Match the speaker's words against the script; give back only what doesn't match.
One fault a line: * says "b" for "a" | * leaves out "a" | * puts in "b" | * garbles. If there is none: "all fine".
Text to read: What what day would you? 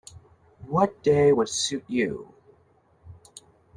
* leaves out "what"
* puts in "suit"